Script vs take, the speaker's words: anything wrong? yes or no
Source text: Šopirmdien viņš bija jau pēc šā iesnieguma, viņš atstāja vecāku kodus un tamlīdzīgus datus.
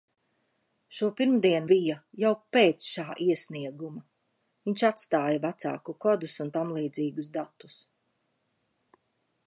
yes